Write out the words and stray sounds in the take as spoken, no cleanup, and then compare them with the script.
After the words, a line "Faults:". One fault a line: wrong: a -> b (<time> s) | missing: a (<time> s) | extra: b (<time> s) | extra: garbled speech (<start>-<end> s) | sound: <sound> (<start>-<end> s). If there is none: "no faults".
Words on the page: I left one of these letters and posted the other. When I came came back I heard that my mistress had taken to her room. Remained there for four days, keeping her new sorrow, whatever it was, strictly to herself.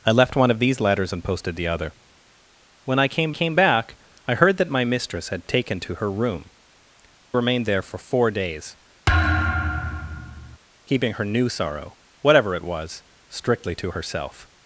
I left one of these letters and posted the other. When I came came back I heard that my mistress had taken to her room. Remained there for four days, keeping her new sorrow, whatever it was, strictly to herself.
Faults:
sound: thud (9.1-10.6 s)